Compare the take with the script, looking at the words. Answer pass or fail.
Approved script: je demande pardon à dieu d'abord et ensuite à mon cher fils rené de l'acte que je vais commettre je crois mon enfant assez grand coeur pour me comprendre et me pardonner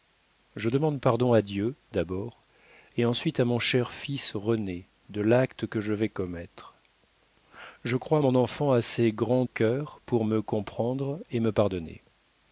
pass